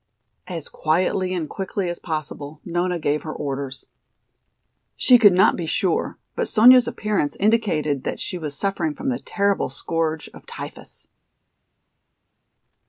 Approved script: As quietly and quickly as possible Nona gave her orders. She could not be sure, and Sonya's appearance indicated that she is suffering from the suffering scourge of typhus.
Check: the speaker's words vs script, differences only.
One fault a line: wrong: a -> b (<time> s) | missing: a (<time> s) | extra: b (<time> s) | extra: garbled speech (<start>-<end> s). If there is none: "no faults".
wrong: and -> but (6.3 s)
wrong: is -> was (8.4 s)
wrong: suffering -> terrible (9.2 s)